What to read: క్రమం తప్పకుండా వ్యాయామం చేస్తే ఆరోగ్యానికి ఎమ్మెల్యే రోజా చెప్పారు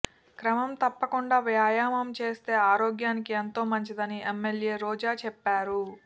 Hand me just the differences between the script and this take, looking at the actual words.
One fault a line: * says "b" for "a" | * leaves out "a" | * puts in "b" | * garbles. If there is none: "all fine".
* puts in "ఎంతో మంచిదని"